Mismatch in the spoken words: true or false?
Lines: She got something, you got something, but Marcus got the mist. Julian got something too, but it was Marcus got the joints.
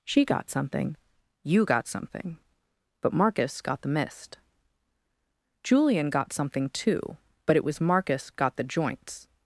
false